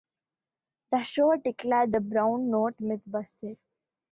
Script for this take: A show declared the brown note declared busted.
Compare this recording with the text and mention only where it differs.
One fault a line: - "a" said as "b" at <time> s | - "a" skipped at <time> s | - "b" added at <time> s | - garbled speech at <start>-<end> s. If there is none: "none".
- "A" said as "The" at 0.9 s
- "declared" said as "myth" at 2.8 s